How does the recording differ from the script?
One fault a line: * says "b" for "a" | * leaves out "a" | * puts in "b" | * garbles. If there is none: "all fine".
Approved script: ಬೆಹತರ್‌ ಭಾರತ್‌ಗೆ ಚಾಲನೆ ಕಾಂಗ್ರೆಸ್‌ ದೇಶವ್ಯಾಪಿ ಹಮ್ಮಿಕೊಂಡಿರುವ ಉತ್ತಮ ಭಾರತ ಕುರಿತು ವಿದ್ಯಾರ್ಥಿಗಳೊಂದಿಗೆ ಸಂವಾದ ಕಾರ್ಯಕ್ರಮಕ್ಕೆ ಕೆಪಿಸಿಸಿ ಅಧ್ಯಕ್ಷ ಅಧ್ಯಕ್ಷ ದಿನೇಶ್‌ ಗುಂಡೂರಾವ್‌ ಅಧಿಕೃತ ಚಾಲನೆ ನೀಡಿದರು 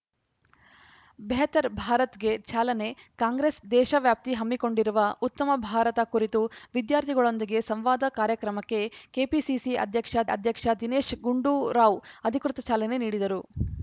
all fine